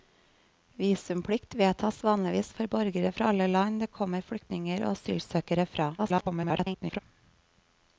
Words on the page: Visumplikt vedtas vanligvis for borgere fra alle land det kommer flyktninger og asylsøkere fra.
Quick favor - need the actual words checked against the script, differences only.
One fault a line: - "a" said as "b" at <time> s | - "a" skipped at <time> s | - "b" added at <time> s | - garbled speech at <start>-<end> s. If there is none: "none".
- garbled speech at 6.0-7.0 s